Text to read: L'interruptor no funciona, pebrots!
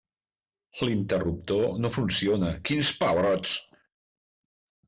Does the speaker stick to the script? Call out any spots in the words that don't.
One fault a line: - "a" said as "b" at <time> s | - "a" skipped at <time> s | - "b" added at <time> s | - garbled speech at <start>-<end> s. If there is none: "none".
- "quins" added at 2.7 s